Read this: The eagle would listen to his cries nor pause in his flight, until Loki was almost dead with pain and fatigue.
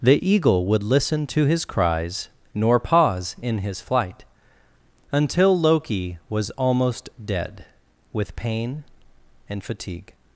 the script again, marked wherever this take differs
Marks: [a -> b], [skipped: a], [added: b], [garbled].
The eagle would listen to his cries nor pause in his flight, until Loki was almost dead with pain and fatigue.